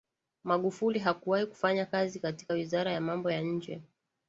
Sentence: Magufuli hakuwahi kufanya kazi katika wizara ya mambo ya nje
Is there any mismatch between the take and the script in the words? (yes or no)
no